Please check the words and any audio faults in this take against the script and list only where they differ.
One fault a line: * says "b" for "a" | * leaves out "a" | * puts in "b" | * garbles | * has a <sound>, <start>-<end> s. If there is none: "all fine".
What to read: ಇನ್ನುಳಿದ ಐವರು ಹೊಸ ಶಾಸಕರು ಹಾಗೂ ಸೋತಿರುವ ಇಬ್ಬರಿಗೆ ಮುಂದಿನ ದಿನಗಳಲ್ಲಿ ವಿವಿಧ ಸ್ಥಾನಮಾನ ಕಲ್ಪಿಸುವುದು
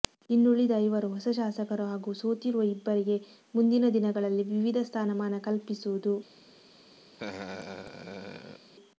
* has a laugh, 7.1-8.7 s